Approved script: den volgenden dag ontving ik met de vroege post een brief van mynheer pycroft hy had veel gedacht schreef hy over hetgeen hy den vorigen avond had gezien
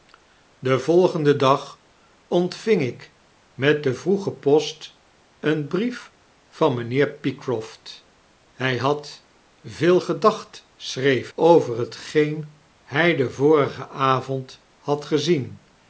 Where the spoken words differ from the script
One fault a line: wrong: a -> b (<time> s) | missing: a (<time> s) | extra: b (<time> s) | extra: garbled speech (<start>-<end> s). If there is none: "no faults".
missing: hy (11.3 s)